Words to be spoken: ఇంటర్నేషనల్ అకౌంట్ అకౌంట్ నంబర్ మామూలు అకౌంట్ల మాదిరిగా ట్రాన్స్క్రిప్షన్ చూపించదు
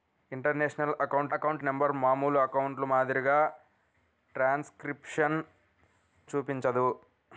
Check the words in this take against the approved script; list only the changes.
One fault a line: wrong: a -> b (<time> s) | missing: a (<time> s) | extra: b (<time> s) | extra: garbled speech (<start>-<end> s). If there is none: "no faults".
no faults